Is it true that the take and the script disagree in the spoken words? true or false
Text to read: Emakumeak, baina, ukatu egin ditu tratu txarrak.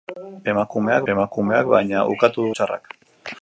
true